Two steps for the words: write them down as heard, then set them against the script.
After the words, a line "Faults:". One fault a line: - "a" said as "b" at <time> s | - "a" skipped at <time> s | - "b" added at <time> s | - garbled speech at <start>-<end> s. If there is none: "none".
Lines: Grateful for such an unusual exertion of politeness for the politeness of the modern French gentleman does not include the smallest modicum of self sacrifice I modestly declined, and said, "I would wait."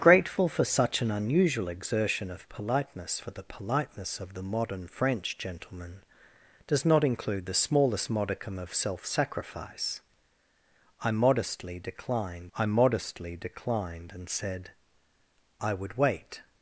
Grateful for such an unusual exertion of politeness for the politeness of the modern French gentleman does not include the smallest modicum of self sacrifice I modestly declined I modestly declined, and said, "I would wait."
Faults:
- "I modestly declined" added at 12.5 s